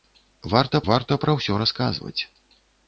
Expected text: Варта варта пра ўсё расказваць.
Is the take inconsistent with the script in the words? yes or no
no